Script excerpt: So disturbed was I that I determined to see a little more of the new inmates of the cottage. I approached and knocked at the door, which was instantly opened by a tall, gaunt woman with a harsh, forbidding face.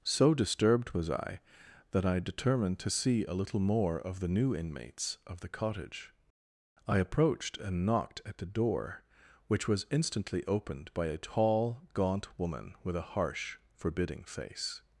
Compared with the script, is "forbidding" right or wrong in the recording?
right